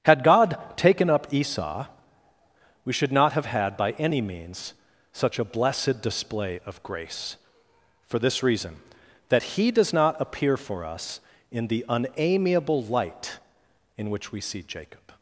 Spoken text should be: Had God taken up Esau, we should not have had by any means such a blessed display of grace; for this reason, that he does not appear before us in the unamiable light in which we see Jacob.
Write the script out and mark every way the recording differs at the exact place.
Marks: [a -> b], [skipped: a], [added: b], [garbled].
Had God taken up Esau, we should not have had by any means such a blessed display of grace; for this reason, that he does not appear [before -> for] us in the unamiable light in which we see Jacob.